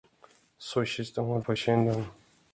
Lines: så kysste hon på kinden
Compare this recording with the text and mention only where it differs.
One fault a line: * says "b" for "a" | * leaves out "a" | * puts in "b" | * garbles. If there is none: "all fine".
all fine